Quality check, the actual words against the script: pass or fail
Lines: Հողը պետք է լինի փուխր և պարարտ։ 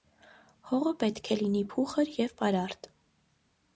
pass